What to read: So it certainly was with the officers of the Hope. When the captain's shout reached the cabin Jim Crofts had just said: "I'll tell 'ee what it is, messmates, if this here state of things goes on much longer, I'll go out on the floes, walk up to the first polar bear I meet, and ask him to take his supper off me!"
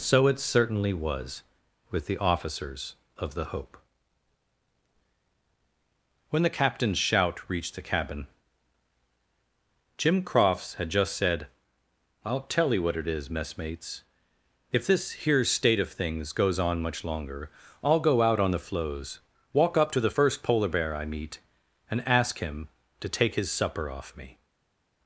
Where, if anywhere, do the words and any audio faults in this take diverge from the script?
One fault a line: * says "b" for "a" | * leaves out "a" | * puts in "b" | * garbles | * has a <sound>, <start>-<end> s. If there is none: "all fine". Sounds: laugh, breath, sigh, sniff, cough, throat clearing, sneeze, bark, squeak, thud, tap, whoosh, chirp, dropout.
* says "you" for "ee"